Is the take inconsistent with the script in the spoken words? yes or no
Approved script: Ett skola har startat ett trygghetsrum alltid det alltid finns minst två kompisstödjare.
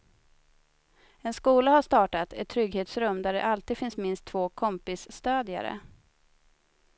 yes